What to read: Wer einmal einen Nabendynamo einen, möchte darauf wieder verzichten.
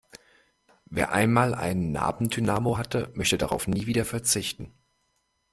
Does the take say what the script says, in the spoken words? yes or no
no